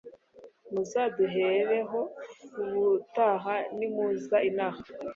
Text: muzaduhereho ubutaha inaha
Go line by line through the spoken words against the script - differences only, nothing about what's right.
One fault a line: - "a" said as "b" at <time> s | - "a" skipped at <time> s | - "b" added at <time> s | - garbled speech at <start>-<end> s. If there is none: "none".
- "nimuza" added at 3.8 s